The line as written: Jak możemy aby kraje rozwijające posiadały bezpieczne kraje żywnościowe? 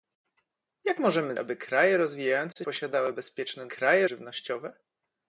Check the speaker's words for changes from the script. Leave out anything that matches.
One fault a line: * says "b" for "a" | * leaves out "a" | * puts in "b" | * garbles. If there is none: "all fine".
all fine